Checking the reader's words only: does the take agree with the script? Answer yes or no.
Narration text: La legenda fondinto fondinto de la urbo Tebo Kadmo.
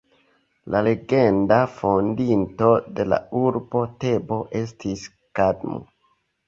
no